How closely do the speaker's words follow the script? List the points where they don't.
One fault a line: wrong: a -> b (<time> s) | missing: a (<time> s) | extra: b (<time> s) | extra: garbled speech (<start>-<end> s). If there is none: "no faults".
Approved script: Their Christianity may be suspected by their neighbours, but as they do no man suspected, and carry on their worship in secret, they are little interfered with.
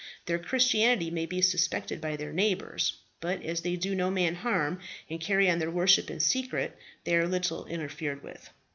wrong: suspected -> harm (4.3 s)